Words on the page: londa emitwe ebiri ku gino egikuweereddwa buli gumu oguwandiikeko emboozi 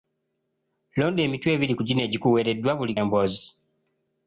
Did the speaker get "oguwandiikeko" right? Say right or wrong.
wrong